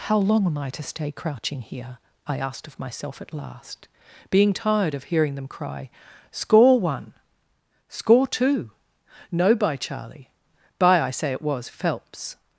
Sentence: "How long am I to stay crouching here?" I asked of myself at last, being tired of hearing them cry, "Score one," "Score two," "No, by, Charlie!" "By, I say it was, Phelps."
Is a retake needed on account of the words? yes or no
no